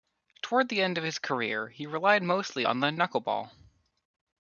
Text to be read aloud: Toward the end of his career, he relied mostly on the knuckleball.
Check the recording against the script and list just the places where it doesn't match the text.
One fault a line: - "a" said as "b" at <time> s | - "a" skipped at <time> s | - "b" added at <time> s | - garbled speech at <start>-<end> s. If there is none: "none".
none